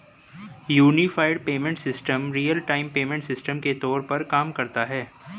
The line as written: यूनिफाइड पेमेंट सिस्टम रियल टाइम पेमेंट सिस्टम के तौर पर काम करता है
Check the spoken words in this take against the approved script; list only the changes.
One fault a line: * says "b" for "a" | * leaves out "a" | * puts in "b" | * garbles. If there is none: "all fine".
all fine